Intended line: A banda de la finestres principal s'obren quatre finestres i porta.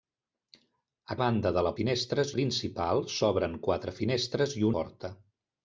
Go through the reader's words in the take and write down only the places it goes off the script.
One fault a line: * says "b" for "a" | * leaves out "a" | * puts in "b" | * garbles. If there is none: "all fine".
all fine